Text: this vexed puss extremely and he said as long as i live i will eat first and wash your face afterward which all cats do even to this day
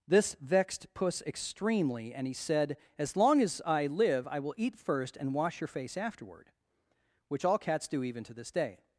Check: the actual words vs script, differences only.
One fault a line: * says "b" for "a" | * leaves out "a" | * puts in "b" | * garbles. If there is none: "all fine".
all fine